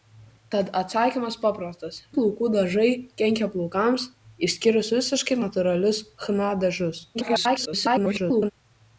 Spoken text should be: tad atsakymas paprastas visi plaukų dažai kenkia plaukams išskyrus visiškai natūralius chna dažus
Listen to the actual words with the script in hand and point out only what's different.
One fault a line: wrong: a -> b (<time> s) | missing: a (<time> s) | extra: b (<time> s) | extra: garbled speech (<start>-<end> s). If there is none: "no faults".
missing: visi (2.0 s)
extra: garbled speech (7.1-8.5 s)